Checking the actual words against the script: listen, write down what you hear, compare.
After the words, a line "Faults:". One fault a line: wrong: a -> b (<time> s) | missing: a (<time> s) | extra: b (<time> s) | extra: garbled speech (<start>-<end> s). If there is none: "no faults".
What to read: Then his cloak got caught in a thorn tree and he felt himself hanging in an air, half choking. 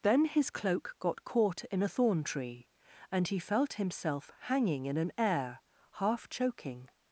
Then his cloak got caught in a thorn tree and he felt himself hanging in an air, half choking.
Faults:
no faults